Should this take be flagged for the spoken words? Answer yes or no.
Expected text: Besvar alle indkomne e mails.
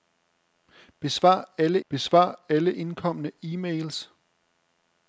yes